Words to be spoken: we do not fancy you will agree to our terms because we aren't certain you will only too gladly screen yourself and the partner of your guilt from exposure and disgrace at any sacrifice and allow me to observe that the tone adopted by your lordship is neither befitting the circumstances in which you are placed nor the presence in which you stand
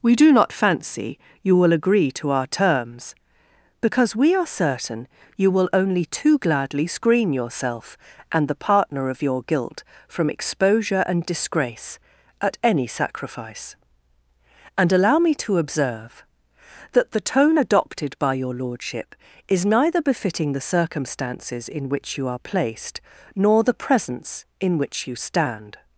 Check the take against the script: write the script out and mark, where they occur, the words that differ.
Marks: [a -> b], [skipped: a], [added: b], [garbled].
we do not fancy you will agree to our terms because we [aren't -> are] certain you will only too gladly screen yourself and the partner of your guilt from exposure and disgrace at any sacrifice and allow me to observe that the tone adopted by your lordship is neither befitting the circumstances in which you are placed nor the presence in which you stand